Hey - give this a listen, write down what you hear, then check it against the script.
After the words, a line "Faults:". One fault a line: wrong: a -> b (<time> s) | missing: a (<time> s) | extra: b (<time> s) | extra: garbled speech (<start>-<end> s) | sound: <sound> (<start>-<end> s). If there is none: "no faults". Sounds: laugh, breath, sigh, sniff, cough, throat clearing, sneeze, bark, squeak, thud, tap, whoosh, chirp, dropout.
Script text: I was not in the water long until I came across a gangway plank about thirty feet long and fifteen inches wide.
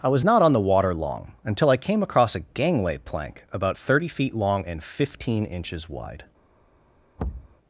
I was not on the water long until I came across a gangway plank about thirty feet long and fifteen inches wide.
Faults:
wrong: in -> on (0.4 s)
sound: thud (7.2-7.6 s)